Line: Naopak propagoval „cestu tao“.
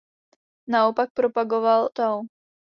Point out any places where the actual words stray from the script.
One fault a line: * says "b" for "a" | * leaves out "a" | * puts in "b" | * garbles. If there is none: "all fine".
* leaves out "cestu"